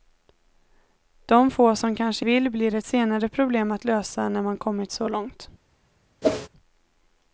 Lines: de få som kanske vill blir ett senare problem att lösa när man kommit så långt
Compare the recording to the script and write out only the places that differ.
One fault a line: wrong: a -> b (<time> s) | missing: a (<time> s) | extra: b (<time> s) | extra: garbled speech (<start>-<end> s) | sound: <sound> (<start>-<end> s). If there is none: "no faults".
sound: whoosh (6.2-6.5 s)